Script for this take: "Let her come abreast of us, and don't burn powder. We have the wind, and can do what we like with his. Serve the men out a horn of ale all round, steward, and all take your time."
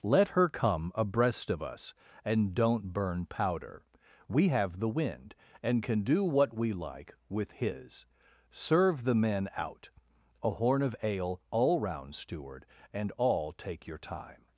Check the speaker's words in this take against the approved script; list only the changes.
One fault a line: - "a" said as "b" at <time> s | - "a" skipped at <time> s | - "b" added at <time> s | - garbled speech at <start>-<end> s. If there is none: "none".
none